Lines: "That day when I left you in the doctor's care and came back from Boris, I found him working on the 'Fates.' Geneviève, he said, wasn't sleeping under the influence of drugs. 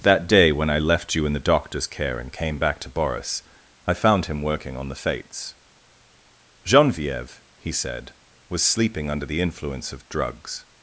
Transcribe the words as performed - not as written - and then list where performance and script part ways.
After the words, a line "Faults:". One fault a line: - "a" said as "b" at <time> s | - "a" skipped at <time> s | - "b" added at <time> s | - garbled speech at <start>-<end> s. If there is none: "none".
"That day when I left you in the doctor's care and came back to Boris, I found him working on the 'Fates.' Geneviève, he said, was sleeping under the influence of drugs.
Faults:
- "from" said as "to" at 2.8 s
- "wasn't" said as "was" at 8.5 s